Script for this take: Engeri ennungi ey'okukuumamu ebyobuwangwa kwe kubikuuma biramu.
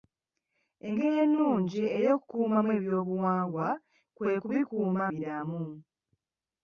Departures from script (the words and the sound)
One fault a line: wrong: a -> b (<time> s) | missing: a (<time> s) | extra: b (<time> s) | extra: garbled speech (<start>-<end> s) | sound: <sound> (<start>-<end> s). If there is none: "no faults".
no faults